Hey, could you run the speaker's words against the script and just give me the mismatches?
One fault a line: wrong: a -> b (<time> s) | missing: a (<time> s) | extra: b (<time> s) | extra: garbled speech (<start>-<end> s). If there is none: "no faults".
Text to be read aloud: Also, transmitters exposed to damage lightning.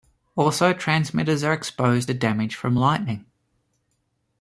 extra: are (1.4 s)
extra: from (2.5 s)